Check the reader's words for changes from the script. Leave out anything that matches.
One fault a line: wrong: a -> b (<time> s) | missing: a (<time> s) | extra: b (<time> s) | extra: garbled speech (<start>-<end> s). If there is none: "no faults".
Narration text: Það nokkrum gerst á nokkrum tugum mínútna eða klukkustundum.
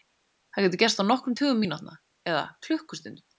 wrong: nokkrum -> getur (0.7 s)